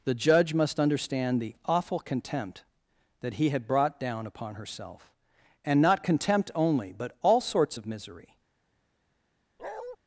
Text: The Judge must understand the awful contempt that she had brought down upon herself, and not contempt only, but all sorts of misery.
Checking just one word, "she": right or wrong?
wrong